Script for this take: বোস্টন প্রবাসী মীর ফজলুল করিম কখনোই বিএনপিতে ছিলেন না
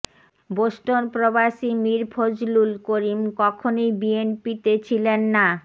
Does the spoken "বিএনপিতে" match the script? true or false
true